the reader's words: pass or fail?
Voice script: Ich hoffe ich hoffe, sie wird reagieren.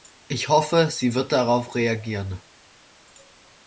fail